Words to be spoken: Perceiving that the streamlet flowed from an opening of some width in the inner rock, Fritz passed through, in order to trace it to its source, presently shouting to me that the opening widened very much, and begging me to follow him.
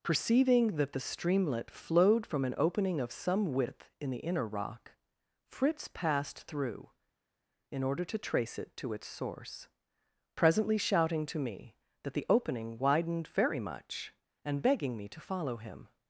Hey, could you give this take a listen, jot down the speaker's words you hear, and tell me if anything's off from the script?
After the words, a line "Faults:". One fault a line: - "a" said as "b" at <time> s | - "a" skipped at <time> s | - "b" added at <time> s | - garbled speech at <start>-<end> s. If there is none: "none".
Perceiving that the streamlet flowed from an opening of some width in the inner rock, Fritz passed through, in order to trace it to its source, presently shouting to me that the opening widened very much, and begging me to follow him.
Faults:
none